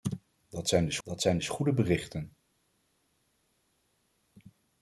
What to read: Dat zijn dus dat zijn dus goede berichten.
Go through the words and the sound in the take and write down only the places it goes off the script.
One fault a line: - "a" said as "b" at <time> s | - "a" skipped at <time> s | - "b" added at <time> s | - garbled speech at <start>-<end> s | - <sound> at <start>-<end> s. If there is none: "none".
none